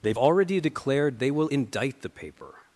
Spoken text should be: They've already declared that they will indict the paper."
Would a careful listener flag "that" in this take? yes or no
yes